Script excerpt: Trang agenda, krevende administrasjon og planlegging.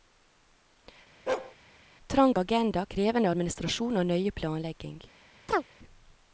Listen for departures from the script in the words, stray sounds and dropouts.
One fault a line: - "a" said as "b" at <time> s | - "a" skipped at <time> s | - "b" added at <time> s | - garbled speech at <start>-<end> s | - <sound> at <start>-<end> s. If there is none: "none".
- bark at 1.3-1.6 s
- "nøye" added at 4.1 s
- chirp at 5.5-5.6 s